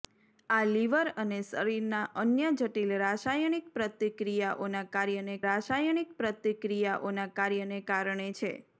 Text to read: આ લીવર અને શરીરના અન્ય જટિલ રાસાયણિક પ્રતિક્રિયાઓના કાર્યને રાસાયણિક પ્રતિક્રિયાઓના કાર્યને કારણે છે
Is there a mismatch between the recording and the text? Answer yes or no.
no